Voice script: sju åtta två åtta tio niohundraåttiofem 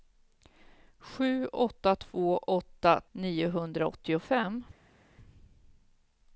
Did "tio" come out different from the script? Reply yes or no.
yes